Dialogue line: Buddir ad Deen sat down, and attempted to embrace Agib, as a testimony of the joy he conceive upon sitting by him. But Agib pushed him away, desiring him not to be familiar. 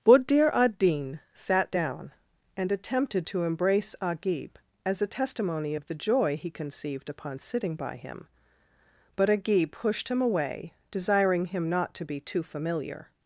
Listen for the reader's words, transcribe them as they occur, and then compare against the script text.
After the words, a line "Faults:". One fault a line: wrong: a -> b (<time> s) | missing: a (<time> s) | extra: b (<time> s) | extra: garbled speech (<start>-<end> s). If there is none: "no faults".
Buddir ad Deen sat down, and attempted to embrace Agib, as a testimony of the joy he conceived upon sitting by him. But Agib pushed him away, desiring him not to be too familiar.
Faults:
wrong: conceive -> conceived (6.5 s)
extra: too (12.2 s)